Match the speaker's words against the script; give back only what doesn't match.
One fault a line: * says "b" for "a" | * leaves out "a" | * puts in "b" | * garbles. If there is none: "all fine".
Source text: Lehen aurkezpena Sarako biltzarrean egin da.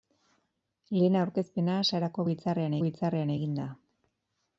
* puts in "biltzarrean"